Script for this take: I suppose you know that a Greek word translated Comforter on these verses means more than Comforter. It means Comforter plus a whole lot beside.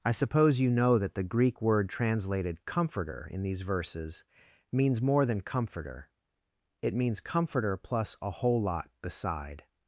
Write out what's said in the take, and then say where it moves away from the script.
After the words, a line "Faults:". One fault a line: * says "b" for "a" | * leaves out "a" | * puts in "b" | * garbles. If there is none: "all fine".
I suppose you know that the Greek word translated Comforter in these verses means more than Comforter. It means Comforter plus a whole lot beside.
Faults:
* says "the" for "a"
* says "in" for "on"